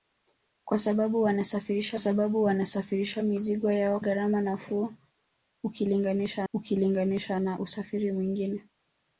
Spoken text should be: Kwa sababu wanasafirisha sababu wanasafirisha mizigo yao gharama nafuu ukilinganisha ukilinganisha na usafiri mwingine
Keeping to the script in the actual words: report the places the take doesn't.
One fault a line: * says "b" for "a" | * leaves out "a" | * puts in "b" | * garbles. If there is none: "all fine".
all fine